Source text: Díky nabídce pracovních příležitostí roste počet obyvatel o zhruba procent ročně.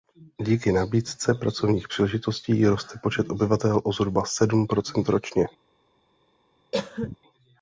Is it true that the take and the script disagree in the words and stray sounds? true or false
true